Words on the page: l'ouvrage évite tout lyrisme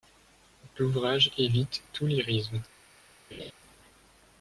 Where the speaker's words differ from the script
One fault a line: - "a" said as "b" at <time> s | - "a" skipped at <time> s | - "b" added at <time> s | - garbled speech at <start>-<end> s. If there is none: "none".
none